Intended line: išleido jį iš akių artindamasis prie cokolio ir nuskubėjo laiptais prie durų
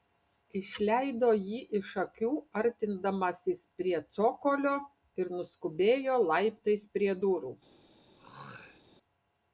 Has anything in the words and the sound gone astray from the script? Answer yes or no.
yes